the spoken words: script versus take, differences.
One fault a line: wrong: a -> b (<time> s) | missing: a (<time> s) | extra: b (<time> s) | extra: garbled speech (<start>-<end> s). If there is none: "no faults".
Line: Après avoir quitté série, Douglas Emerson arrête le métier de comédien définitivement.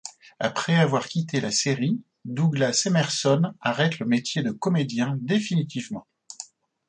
extra: la (1.4 s)